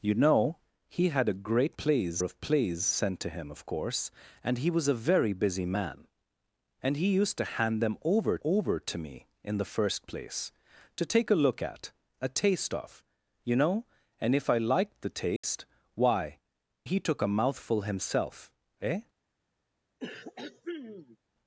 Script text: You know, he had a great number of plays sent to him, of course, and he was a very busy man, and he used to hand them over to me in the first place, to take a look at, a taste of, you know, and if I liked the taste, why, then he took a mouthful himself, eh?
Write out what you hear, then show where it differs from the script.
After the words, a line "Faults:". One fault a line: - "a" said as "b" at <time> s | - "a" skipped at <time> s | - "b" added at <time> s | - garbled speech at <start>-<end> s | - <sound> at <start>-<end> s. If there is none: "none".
You know, he had a great plays of plays sent to him, of course, and he was a very busy man, and he used to hand them over over to me in the first place, to take a look at, a taste of, you know, and if I liked the taste, why, he took a mouthful himself, eh?
Faults:
- "number" said as "plays" at 1.8 s
- "over" added at 8.4 s
- dropout at 15.4-15.4 s
- "then" skipped at 16.4 s
- throat clearing at 20.0-21.2 s